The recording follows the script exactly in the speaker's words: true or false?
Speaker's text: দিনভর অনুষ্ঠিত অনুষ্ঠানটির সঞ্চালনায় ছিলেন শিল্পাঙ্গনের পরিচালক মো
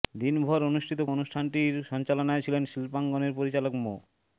true